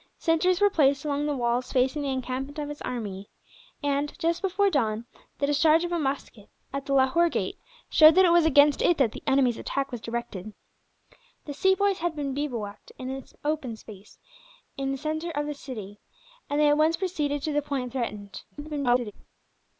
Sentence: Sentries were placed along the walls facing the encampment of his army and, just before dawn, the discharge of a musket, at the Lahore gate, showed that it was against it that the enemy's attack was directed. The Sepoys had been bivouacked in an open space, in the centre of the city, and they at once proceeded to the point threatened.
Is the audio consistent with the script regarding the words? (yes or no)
no